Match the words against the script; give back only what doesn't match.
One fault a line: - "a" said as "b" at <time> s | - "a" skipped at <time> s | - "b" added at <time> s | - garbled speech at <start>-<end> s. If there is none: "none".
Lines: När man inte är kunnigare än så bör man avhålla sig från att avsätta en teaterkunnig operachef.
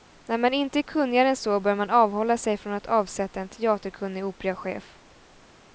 none